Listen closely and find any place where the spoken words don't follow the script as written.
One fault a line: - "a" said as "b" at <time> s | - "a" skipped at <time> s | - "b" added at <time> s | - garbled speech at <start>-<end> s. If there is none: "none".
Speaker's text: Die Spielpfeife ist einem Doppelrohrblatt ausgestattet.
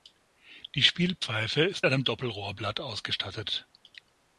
none